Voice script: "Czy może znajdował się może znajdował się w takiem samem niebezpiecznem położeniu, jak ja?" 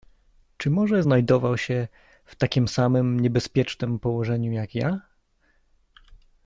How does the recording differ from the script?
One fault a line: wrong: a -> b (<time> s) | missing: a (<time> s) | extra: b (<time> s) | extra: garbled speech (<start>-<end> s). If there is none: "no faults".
missing: może znajdował się (1.9 s)